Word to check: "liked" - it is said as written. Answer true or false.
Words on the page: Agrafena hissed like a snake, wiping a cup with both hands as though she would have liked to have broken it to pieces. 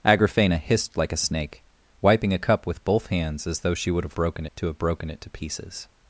false